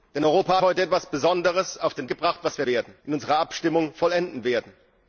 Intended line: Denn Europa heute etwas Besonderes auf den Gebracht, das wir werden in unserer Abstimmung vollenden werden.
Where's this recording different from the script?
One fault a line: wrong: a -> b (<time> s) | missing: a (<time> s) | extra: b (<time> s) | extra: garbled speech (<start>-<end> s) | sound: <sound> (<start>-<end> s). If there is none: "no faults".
no faults